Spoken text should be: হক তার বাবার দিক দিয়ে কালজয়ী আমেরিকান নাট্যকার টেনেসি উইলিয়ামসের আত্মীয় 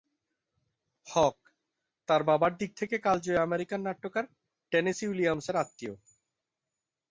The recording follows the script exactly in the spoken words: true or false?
false